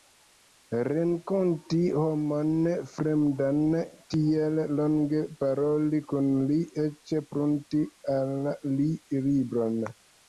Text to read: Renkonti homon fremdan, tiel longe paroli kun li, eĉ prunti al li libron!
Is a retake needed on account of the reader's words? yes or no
no